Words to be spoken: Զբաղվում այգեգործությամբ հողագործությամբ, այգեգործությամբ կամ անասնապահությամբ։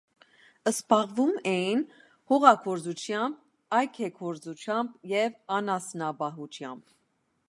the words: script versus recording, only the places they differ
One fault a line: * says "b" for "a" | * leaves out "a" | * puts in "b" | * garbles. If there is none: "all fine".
* says "էին" for "այգեգործությամբ"
* says "և" for "կամ"